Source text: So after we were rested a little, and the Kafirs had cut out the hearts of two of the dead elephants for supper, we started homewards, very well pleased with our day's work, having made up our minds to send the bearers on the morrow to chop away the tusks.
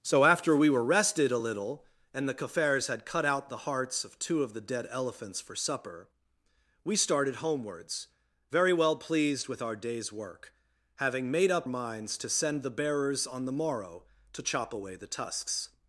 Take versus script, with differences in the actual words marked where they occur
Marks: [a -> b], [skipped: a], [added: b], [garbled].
So after we were rested a little, and the Kafirs had cut out the hearts of two of the dead elephants for supper, we started homewards, very well pleased with our day's work, having made up [skipped: our] minds to send the bearers on the morrow to chop away the tusks.